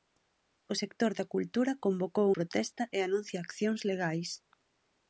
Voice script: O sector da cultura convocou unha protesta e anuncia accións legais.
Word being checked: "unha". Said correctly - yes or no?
no